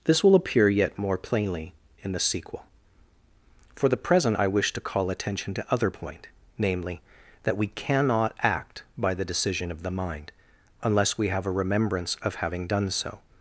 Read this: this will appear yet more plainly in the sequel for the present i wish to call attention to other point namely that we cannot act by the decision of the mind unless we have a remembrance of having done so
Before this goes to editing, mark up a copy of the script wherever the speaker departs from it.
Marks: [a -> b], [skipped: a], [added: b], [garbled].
this will appear yet more plainly in the sequel for the present i wish to call attention to other point namely that we cannot act by the decision of the mind unless we have a remembrance of having done so